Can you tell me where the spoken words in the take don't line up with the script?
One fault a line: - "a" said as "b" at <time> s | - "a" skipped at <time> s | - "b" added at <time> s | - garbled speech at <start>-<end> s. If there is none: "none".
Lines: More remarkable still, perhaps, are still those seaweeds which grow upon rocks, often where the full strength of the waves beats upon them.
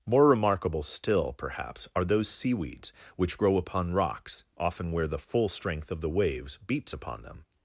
- "still" skipped at 2.0 s